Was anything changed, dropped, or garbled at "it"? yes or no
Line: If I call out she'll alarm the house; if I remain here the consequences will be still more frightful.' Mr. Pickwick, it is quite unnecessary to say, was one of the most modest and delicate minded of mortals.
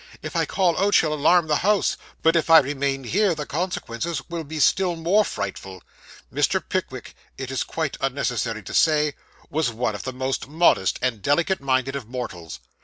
no